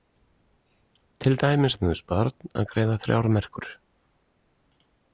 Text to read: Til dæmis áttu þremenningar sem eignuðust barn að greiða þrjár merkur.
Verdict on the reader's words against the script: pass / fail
fail